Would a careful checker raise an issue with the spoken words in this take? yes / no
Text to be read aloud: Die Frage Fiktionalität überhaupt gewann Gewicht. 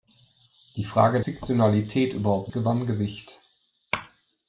no